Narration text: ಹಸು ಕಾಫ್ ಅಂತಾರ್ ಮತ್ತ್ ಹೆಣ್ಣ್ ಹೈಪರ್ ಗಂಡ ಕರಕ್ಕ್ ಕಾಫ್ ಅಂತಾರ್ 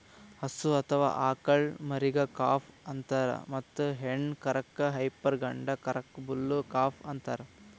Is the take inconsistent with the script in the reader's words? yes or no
yes